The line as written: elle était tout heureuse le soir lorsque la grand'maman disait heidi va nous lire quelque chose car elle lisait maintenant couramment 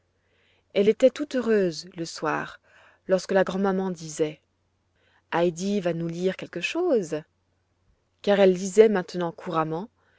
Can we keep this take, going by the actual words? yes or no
yes